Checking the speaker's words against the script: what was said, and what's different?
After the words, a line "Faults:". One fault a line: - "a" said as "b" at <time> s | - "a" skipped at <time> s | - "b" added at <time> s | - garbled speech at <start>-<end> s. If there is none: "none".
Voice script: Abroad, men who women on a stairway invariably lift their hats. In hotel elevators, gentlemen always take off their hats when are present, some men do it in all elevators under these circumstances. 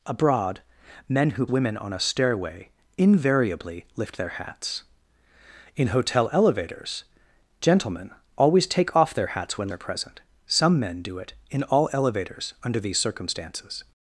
Abroad, men who women on a stairway invariably lift their hats. In hotel elevators, gentlemen always take off their hats when are present, some men do it in all elevators under these circumstances.
Faults:
none